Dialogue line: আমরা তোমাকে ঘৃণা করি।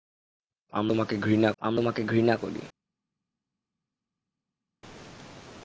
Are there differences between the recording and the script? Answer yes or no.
yes